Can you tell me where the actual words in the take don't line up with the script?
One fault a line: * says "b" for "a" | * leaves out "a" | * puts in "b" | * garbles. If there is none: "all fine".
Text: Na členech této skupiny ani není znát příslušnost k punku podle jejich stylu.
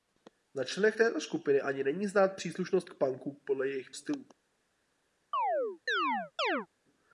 all fine